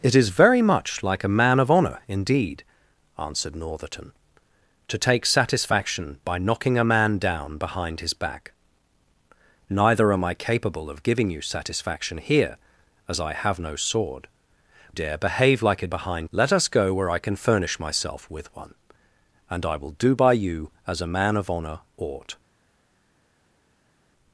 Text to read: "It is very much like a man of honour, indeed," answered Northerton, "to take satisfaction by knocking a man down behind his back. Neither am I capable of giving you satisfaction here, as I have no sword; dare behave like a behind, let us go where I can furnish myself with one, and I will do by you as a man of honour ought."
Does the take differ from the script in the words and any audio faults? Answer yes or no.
no